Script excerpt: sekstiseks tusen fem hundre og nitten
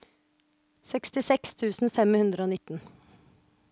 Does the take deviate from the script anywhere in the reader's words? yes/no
no